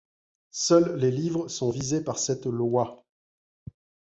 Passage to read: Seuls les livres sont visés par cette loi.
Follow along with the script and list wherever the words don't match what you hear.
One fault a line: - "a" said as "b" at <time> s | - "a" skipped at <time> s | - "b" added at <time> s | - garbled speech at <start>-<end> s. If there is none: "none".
none